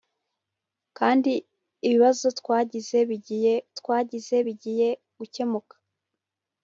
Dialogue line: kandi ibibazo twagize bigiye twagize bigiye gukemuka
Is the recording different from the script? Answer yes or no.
no